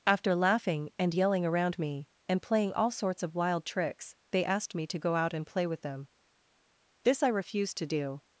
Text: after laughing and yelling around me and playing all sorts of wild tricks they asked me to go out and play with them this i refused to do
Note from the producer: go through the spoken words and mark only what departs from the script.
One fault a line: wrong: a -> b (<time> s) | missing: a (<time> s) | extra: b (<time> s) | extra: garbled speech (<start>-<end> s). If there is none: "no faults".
no faults